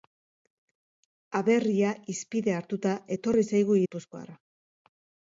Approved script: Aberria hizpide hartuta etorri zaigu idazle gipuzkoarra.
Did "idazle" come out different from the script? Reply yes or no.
yes